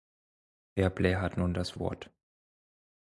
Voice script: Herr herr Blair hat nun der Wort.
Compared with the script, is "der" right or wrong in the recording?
wrong